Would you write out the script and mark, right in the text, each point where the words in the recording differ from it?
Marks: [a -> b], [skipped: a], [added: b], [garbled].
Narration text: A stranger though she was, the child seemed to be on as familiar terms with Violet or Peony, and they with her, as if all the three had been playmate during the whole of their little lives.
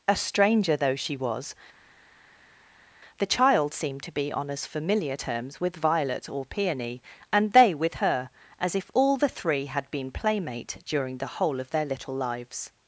A stranger though she was, the child seemed to be on as familiar terms with Violet or Peony, and they with her, as if all the three had been playmate during the whole of their little lives.